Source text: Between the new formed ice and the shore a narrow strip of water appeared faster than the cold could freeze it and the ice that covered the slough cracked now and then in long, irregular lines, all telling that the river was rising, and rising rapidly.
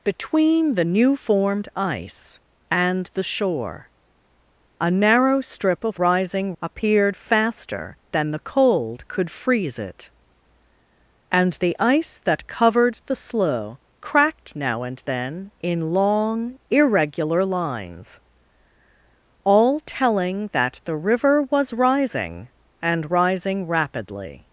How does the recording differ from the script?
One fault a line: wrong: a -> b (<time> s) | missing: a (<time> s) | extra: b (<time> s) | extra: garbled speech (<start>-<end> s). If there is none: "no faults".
wrong: water -> rising (6.0 s)